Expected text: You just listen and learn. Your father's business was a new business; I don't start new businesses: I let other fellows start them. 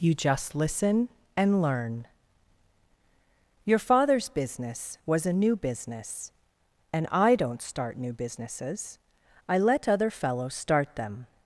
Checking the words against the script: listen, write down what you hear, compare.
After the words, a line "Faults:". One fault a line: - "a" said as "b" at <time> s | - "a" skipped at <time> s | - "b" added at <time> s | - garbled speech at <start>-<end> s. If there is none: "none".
You just listen and learn. Your father's business was a new business; and I don't start new businesses: I let other fellows start them.
Faults:
- "and" added at 6.9 s